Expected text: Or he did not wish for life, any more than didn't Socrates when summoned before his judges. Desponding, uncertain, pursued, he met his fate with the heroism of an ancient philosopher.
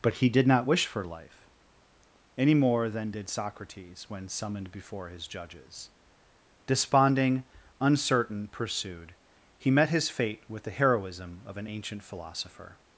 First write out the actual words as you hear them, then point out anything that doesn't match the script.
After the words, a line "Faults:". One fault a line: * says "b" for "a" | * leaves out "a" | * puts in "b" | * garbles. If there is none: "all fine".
But he did not wish for life, any more than did Socrates when summoned before his judges. Desponding, uncertain, pursued, he met his fate with the heroism of an ancient philosopher.
Faults:
* says "But" for "Or"
* says "did" for "didn't"